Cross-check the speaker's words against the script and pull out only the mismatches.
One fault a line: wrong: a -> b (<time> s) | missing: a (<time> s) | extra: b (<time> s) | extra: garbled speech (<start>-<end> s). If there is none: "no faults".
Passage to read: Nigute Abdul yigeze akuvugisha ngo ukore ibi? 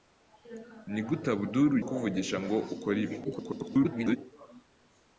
missing: yigeze (1.7 s)
extra: garbled speech (3.2-4.2 s)